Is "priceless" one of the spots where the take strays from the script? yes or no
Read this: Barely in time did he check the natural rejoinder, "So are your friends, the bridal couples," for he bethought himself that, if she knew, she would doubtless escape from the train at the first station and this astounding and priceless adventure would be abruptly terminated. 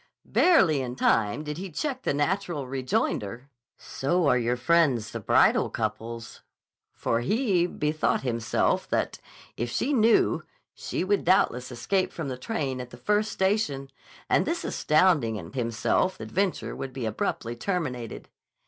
yes